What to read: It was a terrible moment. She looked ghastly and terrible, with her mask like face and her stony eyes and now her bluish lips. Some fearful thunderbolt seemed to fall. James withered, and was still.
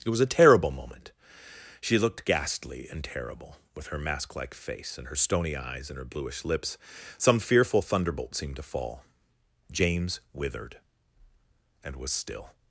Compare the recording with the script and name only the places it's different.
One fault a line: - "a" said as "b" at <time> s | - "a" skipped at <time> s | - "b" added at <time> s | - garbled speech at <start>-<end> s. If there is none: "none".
- "now" skipped at 6.0 s